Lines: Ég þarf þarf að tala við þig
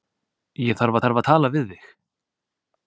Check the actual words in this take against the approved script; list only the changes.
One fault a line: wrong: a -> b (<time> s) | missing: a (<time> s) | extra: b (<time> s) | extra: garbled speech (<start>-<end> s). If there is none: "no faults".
no faults